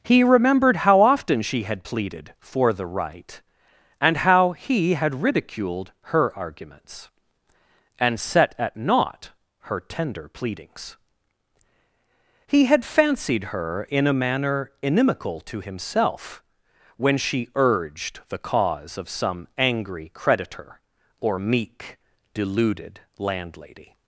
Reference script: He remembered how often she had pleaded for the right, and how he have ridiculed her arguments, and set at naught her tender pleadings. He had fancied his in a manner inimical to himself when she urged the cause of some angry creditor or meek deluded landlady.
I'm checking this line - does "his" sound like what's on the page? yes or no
no